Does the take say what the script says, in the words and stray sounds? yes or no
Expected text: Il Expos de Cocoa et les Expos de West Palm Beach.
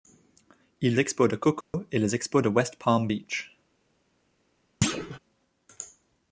no